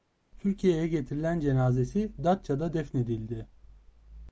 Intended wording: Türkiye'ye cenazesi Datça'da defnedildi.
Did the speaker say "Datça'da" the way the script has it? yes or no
yes